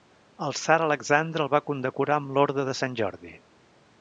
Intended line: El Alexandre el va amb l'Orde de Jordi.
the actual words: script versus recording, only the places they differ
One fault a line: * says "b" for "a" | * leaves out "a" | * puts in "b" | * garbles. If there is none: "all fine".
* puts in "tsar"
* puts in "condecorar"
* puts in "Sant"